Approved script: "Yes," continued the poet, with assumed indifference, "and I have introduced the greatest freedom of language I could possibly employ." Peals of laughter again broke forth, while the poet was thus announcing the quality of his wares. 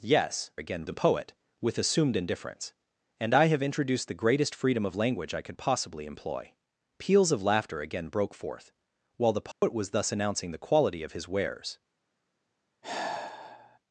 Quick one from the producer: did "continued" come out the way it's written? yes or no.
no